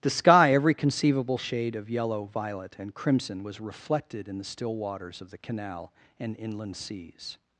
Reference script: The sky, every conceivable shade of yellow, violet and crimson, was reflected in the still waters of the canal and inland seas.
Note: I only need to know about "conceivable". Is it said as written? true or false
true